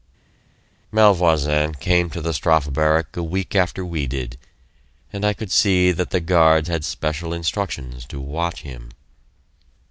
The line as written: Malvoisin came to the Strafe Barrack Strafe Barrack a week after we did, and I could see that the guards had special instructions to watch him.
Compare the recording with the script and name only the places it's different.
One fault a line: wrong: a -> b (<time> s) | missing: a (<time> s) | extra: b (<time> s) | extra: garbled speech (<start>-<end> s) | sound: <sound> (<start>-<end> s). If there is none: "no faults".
missing: Strafe Barrack (3.2 s)